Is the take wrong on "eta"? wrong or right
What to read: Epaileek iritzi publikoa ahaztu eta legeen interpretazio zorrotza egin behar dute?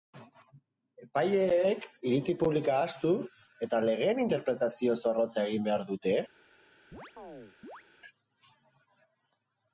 right